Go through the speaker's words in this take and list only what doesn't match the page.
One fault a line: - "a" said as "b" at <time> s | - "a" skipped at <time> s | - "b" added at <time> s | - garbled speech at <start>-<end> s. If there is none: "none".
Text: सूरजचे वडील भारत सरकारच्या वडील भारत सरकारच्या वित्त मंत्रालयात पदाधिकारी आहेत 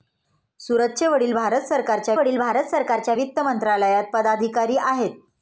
none